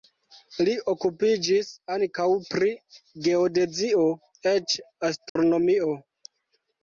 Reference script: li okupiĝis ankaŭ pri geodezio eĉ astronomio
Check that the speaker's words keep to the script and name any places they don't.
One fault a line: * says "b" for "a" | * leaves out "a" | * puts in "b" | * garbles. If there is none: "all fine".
all fine